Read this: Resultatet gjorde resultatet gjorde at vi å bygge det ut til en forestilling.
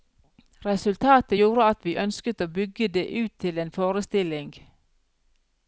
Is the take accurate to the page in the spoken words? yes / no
no